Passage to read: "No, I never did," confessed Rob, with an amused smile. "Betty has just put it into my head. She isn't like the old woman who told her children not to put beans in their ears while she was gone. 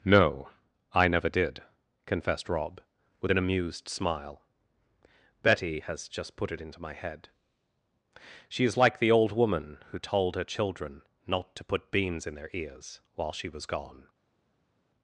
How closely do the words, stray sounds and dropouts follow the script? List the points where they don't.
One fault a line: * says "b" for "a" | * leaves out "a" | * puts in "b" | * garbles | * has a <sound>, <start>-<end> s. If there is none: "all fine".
* says "is" for "isn't"